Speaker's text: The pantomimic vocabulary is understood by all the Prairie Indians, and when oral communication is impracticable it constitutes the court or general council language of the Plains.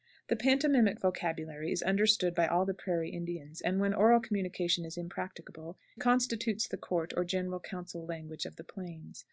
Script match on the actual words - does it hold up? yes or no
no